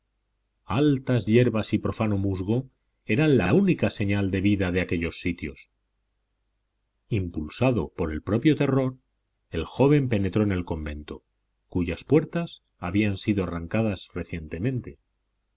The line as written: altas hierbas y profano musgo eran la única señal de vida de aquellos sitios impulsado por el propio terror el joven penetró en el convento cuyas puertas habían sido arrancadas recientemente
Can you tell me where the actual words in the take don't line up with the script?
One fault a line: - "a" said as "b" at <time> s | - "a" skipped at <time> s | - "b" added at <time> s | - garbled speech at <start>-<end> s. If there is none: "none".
- "la" added at 3.4 s